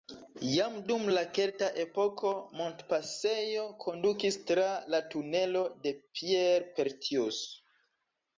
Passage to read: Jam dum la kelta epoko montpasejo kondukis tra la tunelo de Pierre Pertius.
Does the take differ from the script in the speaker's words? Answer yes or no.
no